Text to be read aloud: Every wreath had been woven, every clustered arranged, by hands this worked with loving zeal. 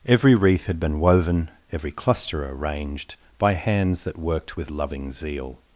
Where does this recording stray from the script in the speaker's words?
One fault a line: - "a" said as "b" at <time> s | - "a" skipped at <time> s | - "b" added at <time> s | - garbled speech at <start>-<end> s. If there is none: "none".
- "clustered" said as "cluster" at 1.9 s
- "this" said as "that" at 4.0 s